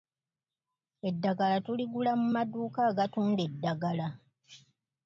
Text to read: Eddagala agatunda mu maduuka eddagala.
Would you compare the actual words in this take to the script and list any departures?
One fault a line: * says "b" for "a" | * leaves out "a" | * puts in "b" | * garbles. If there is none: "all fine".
* says "tuligula" for "agatunda"
* puts in "agatunda"